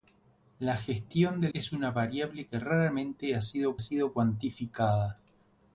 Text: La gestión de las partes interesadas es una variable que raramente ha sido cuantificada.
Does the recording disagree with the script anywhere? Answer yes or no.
yes